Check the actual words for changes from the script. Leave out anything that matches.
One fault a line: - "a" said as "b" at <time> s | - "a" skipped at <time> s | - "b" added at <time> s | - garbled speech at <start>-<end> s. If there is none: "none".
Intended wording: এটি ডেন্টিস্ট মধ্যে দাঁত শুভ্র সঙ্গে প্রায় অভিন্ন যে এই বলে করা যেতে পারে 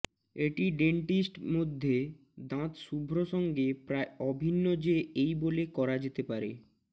none